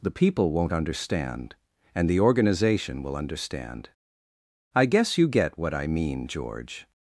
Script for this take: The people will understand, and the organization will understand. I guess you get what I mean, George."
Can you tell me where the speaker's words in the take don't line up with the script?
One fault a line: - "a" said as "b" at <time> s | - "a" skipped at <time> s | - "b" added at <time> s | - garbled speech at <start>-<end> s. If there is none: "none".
- "will" said as "won't" at 0.5 s